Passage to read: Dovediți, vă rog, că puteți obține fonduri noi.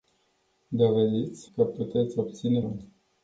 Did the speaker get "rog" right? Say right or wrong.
wrong